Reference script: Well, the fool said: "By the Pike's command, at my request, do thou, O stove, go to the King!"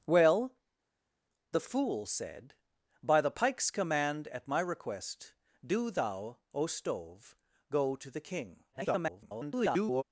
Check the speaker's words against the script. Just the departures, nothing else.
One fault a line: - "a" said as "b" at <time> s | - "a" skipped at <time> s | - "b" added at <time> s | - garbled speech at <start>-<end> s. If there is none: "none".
- garbled speech at 8.7-10.0 s